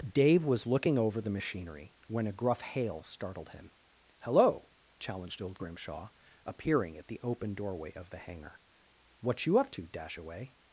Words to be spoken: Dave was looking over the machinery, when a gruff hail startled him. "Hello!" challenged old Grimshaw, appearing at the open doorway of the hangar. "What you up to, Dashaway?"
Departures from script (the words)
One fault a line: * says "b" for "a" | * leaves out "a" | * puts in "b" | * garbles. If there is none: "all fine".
all fine